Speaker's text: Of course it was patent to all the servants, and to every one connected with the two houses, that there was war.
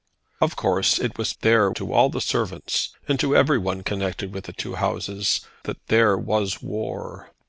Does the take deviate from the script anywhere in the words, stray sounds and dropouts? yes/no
yes